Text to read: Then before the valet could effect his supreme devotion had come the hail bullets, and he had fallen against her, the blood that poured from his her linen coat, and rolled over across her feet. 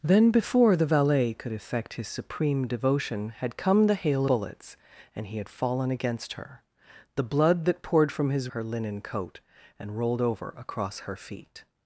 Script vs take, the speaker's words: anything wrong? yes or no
no